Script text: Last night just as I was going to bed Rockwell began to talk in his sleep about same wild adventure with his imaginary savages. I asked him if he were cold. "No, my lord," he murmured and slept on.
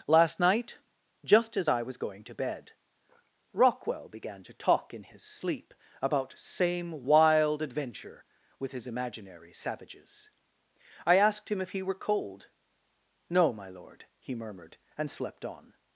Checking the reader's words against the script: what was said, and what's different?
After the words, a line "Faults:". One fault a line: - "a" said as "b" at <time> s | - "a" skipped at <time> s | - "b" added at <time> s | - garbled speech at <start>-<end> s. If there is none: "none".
Last night just as I was going to bed Rockwell began to talk in his sleep about same wild adventure with his imaginary savages. I asked him if he were cold. "No, my lord," he murmured and slept on.
Faults:
none